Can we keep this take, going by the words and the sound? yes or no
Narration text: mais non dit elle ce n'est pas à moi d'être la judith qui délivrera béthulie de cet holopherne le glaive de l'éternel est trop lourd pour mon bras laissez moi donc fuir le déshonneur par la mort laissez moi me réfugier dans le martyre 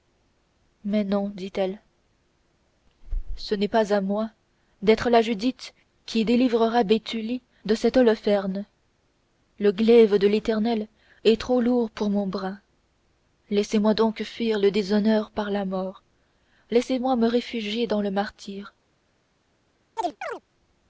no